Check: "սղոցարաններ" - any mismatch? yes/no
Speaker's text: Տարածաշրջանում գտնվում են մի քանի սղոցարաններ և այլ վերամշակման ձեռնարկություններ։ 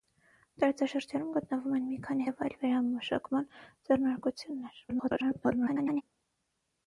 yes